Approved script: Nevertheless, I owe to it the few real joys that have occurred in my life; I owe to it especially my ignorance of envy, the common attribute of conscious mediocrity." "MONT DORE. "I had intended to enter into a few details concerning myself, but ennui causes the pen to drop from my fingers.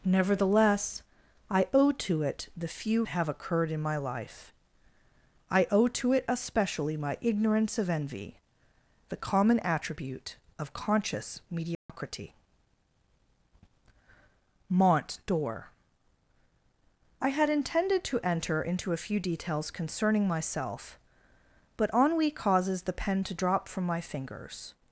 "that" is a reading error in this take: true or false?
true